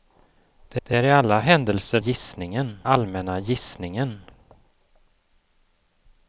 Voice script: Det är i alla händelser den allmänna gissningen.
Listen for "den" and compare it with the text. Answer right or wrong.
wrong